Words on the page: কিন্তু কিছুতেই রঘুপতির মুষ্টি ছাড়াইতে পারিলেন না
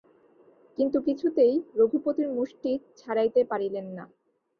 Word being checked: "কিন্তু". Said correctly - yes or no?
yes